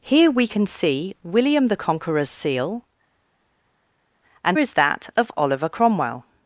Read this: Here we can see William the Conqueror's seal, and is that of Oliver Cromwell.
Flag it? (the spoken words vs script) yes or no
no